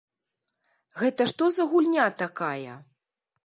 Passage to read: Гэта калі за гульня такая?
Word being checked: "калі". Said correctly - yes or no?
no